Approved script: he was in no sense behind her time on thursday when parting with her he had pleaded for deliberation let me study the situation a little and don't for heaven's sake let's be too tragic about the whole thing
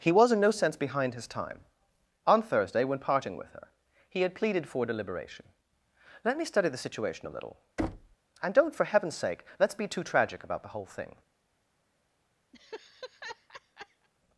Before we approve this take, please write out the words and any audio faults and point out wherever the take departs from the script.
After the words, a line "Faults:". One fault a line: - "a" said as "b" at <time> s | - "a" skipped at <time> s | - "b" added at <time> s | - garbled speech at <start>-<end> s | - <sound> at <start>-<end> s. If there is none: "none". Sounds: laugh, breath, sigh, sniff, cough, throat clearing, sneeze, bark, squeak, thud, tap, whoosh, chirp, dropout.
he was in no sense behind his time on thursday when parting with her he had pleaded for deliberation let me study the situation a little and don't for heaven's sake let's be too tragic about the whole thing
Faults:
- "her" said as "his" at 1.1 s
- thud at 7.8-8.2 s
- laugh at 12.5-14.1 s